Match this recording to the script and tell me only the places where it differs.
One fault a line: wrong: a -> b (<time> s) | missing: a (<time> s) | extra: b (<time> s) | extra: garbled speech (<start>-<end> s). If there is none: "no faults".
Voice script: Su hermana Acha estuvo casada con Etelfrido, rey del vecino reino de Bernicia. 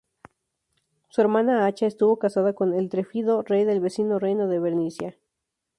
no faults